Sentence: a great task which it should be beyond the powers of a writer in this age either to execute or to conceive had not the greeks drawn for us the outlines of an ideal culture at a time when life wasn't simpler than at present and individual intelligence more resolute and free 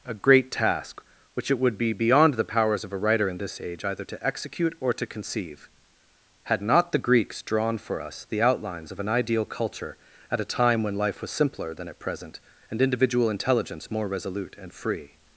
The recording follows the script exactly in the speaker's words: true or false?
false